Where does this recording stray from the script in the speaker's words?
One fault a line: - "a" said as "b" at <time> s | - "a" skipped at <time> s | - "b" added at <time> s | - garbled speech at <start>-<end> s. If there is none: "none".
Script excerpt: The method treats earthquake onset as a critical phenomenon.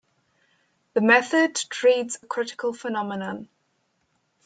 - "earthquake onset as" skipped at 2.2 s